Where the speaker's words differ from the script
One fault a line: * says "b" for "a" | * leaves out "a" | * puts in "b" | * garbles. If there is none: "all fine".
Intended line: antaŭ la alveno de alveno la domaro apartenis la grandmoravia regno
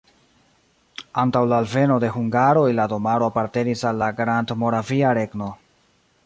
* says "hungaroj" for "alveno"
* puts in "al"